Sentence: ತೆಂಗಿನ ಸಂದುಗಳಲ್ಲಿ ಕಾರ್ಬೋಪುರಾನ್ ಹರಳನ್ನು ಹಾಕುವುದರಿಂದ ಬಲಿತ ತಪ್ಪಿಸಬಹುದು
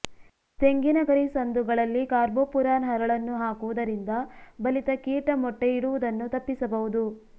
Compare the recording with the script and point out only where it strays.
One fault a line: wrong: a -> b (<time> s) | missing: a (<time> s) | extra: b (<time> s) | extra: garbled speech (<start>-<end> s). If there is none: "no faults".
extra: ಗರಿ (1.0 s)
extra: ಕೀಟ ಮೊಟ್ಟೆ ಇಡುವುದನ್ನು (5.0 s)